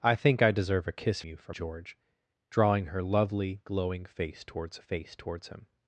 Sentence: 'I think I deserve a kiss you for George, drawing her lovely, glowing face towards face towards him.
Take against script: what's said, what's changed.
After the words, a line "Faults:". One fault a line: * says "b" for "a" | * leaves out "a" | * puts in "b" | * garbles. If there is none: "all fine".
'I think I deserve a kiss you for George, drawing her lovely, glowing face towards face towards him.
Faults:
all fine